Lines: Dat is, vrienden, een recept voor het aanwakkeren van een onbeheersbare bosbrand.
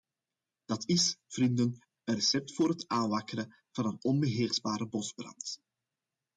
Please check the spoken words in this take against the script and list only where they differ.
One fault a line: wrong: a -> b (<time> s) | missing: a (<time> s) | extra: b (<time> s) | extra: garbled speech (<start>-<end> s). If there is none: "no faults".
no faults